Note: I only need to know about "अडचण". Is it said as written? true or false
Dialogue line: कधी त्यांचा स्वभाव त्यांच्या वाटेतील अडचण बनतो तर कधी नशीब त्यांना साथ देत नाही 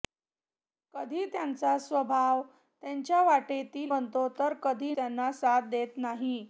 false